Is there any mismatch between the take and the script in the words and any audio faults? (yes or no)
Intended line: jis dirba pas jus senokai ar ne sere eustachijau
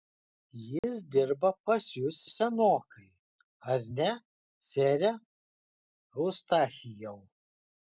yes